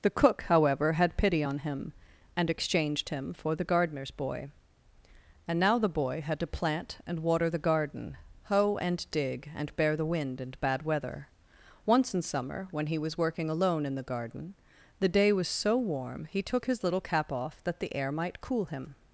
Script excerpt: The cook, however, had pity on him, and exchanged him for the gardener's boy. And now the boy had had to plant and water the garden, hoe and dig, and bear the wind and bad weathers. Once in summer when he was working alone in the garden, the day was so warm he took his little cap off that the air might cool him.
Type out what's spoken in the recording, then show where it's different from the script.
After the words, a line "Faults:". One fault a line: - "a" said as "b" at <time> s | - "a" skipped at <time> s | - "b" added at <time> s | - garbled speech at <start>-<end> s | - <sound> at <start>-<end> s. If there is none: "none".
The cook, however, had pity on him, and exchanged him for the gardener's boy. And now the boy had to plant and water the garden, hoe and dig, and bear the wind and bad weather. Once in summer when he was working alone in the garden, the day was so warm he took his little cap off that the air might cool him.
Faults:
- "had" skipped at 6.4 s
- "weathers" said as "weather" at 10.8 s